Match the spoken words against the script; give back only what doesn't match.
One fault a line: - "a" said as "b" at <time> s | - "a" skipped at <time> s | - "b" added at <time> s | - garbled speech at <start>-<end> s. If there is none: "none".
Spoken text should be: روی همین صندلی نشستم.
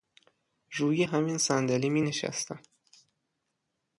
- "می" added at 1.9 s